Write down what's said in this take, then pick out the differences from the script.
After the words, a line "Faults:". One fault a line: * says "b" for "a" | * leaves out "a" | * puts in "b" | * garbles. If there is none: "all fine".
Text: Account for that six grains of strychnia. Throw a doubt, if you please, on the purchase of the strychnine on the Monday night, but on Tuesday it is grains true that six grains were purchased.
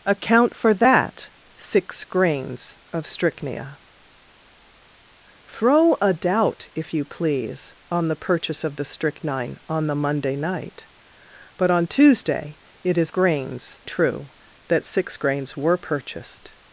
Account for that six grains of strychnia. Throw a doubt, if you please, on the purchase of the strychnine on the Monday night, but on Tuesday it is grains true that six grains were purchased.
Faults:
all fine